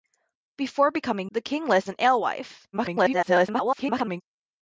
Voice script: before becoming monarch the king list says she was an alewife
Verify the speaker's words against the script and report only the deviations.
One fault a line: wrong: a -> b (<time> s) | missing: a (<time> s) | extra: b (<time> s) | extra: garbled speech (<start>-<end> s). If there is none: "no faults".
missing: monarch (1.3 s)
missing: says she was (1.9 s)
extra: garbled speech (2.7-4.2 s)